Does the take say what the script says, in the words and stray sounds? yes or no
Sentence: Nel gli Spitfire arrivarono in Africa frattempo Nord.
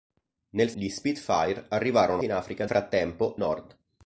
yes